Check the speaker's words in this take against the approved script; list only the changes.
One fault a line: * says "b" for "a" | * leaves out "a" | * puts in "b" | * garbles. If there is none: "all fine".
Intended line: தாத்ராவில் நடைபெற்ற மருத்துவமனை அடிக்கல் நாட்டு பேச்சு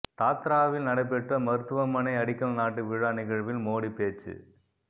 * puts in "விழா நிகழ்வில் மோடி"